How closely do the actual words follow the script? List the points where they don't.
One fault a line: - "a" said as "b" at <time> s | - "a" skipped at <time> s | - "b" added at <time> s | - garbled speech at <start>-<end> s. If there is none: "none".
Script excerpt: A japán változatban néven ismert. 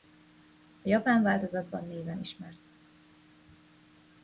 none